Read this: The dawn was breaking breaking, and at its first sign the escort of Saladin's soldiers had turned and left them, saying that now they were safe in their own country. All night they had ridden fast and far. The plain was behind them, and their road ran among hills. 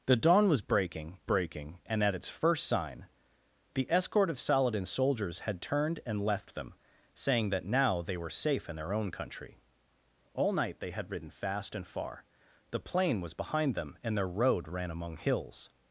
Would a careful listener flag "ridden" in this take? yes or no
no